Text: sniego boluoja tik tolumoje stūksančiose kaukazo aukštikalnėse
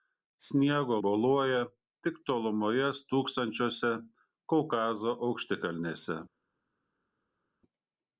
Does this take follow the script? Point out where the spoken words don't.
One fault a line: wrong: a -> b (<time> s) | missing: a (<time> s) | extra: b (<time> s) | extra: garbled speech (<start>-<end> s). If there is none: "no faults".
no faults